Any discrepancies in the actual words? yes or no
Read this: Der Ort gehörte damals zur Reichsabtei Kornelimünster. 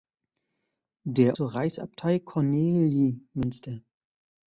yes